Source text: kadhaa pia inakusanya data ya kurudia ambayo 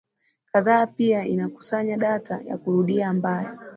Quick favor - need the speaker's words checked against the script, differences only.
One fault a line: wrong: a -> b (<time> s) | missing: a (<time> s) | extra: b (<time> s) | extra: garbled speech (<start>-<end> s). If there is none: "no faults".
no faults